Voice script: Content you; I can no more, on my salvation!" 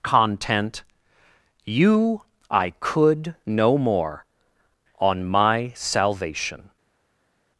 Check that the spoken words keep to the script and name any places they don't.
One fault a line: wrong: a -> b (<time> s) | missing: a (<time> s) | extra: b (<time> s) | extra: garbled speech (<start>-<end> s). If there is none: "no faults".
wrong: can -> could (2.8 s)